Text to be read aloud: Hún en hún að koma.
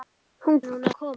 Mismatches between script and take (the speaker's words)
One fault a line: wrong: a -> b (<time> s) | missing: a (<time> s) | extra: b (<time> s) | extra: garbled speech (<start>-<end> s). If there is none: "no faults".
no faults